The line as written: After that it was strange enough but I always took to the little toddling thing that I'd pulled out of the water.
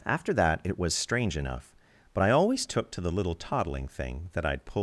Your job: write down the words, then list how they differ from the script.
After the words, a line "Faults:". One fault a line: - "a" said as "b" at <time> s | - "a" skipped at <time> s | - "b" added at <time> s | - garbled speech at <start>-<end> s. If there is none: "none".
After that it was strange enough but I always took to the little toddling thing that I'd pulled.
Faults:
- "out of the water" skipped at 4.8 s